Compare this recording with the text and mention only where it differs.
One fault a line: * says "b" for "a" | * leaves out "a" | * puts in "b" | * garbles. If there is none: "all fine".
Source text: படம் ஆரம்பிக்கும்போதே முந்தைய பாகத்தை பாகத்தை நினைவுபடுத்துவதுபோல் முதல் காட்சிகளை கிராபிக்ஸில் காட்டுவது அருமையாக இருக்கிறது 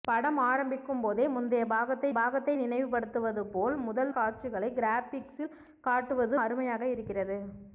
all fine